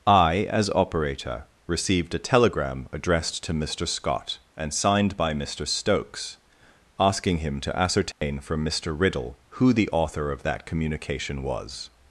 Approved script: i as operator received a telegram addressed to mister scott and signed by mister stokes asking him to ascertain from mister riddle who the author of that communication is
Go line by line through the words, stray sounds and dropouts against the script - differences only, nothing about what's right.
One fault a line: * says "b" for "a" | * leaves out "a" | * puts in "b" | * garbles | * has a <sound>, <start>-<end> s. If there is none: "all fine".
* has a dropout, 8.1-8.2 s
* says "was" for "is"